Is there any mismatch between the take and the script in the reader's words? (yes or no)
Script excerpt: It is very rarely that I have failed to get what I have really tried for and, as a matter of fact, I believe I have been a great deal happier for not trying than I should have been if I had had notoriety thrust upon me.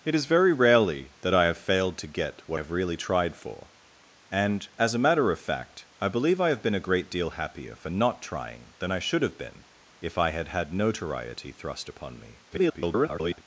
yes